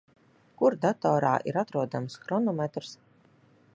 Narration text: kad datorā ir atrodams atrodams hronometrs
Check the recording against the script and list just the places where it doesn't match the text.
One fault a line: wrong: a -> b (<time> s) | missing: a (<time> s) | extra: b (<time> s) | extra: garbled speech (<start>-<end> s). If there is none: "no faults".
wrong: kad -> kur (0.6 s)
missing: atrodams (2.2 s)